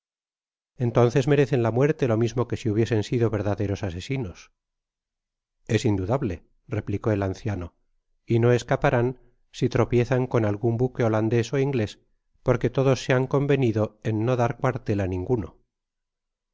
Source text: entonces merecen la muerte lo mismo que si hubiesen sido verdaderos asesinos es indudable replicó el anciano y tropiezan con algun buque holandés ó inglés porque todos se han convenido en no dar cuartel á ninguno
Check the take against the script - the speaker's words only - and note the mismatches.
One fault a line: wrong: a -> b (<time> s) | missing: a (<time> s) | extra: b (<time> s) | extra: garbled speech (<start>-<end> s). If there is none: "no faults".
extra: no escaparán si (8.4 s)